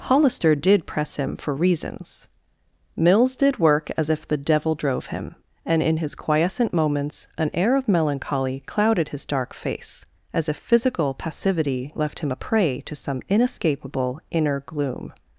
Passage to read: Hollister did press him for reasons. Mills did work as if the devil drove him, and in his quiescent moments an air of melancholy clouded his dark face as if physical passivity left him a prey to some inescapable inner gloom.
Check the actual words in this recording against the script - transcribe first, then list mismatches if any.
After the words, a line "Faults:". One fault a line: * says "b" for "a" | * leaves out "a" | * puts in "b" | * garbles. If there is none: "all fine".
Hollister did press him for reasons. Mills did work as if the devil drove him, and in his quiescent moments an air of melancholy clouded his dark face as if physical passivity left him a prey to some inescapable inner gloom.
Faults:
all fine